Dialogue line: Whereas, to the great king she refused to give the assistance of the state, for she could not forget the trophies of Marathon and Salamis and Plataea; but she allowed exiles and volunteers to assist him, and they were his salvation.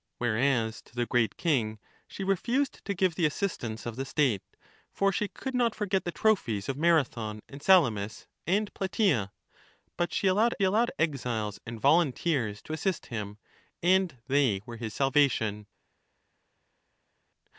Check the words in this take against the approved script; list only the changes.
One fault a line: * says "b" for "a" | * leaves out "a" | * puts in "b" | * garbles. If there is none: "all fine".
* puts in "allowed"